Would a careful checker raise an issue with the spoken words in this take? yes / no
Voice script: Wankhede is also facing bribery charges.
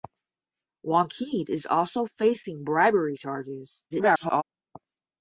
yes